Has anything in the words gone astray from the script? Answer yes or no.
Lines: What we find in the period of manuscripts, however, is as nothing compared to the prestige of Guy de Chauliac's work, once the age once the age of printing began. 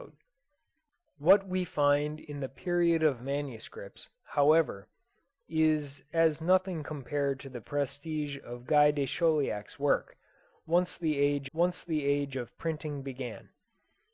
no